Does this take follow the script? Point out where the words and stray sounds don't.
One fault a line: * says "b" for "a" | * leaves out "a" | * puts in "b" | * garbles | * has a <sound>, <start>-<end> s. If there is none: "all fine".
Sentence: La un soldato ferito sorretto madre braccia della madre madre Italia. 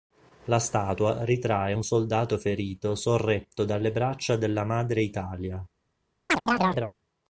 * puts in "statua ritrae"
* says "dalle" for "madre"
* leaves out "madre"
* has a chirp, 6.3-6.9 s